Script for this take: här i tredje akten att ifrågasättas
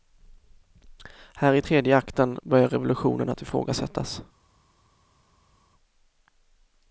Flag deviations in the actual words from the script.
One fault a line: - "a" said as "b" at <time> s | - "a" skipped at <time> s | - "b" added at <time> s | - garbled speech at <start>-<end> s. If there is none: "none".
- "börjar revolutionen" added at 2.4 s